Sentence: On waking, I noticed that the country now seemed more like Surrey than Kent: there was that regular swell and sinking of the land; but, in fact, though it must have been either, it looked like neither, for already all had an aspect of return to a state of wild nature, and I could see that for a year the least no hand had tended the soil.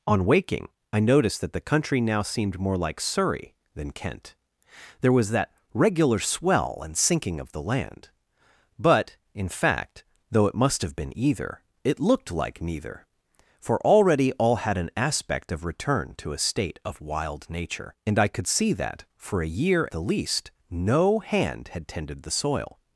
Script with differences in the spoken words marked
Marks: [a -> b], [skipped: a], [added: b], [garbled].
On waking, I noticed that the country now seemed more like Surrey than Kent: there was that regular swell and sinking of the land; but, in fact, though it must have been either, it looked like neither, for already all had an aspect of return to a state of wild nature, and I could see that for a year the least no hand had tended the soil.